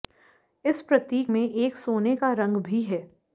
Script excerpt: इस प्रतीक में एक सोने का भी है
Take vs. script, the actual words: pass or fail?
fail